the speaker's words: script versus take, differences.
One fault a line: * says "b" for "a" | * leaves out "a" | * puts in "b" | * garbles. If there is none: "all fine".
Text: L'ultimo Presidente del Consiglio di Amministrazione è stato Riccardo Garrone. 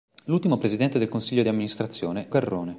* leaves out "è stato Riccardo"